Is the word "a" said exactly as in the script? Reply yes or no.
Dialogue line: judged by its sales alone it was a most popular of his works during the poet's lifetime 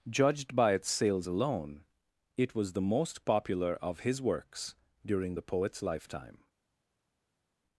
no